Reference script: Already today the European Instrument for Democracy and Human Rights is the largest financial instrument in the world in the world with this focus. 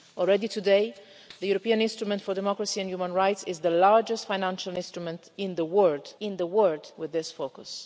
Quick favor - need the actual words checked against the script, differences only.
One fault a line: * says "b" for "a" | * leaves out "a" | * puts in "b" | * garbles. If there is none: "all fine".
all fine